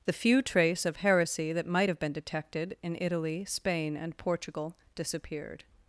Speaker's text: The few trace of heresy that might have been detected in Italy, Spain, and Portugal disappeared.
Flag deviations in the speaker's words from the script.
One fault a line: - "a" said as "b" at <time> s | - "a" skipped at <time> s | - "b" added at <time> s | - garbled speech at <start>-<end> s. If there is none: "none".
none